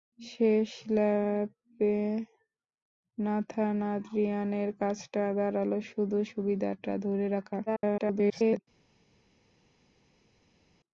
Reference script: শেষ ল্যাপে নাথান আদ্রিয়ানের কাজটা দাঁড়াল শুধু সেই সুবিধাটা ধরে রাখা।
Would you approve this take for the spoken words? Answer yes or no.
no